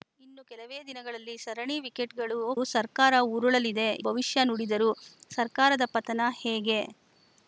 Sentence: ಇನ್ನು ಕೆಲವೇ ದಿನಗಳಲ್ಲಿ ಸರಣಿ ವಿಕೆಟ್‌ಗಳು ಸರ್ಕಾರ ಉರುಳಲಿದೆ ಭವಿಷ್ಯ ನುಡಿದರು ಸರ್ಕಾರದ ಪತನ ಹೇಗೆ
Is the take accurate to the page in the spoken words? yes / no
yes